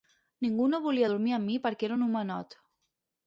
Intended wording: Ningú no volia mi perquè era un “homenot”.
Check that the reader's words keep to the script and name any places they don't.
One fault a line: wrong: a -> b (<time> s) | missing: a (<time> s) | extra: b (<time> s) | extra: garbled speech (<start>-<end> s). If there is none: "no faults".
extra: dormir amb (1.1 s)